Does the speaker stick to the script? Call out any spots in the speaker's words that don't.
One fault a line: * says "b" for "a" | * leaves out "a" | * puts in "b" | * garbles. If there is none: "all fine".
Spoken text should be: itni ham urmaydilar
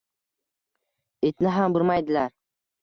all fine